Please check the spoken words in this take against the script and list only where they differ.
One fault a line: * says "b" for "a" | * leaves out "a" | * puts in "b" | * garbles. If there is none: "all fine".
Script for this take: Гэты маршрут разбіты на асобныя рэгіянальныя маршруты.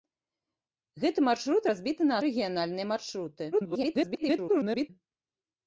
* leaves out "асобныя"
* garbles